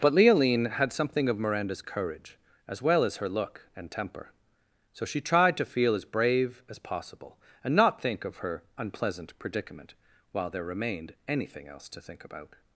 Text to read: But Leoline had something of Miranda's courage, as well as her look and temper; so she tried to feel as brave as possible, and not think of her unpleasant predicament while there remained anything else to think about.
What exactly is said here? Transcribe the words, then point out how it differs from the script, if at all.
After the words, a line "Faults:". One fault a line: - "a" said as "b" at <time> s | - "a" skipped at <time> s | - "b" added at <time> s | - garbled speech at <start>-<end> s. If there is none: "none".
But Leoline had something of Miranda's courage, as well as her look and temper; so she tried to feel as brave as possible, and not think of her unpleasant predicament while there remained anything else to think about.
Faults:
none